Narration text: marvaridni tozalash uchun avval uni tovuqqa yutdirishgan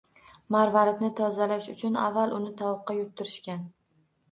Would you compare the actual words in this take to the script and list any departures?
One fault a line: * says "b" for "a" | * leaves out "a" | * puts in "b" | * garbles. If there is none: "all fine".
all fine